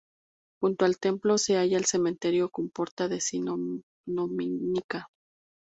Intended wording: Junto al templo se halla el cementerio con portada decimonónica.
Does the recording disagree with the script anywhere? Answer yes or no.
no